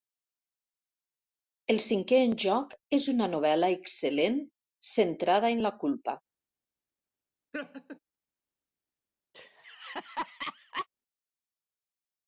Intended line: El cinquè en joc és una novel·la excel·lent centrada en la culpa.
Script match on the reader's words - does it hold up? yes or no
yes